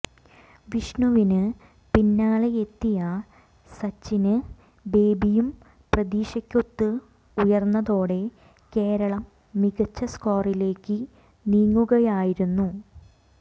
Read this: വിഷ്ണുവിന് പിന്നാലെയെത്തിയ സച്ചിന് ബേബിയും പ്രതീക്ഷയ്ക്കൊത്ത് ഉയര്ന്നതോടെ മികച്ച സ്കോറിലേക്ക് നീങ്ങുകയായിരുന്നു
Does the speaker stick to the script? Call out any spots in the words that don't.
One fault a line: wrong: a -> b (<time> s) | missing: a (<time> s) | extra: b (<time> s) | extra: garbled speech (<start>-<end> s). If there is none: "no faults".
extra: കേരളം (8.7 s)